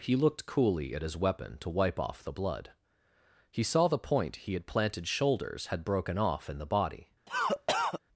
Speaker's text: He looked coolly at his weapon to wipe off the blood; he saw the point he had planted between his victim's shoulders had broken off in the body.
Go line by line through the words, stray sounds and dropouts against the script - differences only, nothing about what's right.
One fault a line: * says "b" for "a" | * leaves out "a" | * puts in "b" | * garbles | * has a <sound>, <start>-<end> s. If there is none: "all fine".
* leaves out "between his victim's"
* has a cough, 7.3-8.0 s